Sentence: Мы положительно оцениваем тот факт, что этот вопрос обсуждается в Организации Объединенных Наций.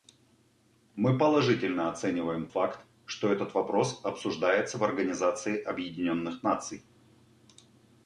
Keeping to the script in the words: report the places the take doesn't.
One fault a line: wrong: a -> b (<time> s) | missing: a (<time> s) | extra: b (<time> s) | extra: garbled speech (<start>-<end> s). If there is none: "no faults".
missing: тот (2.5 s)